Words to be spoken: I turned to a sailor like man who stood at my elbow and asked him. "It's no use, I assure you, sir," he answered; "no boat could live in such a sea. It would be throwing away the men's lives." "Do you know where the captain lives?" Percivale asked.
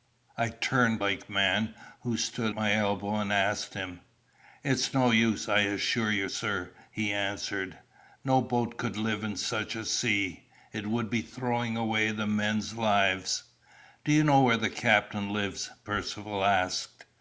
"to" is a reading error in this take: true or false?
true